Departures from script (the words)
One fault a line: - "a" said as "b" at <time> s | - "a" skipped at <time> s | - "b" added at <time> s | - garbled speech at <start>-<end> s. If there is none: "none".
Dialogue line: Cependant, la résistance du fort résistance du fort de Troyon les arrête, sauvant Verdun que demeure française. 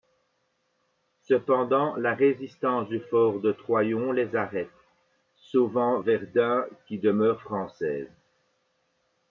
- "résistance du fort" skipped at 3.4 s
- "que" said as "qui" at 6.9 s